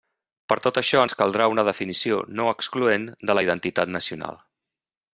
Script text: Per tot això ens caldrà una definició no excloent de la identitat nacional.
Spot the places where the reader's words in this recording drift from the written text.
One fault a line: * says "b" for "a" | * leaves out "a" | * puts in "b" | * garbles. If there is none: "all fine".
all fine